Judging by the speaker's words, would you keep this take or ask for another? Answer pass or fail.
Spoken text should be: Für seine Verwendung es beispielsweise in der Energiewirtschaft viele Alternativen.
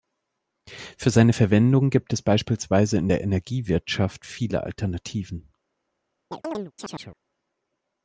fail